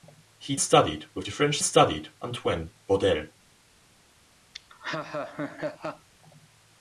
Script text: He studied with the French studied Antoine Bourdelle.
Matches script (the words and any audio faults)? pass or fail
fail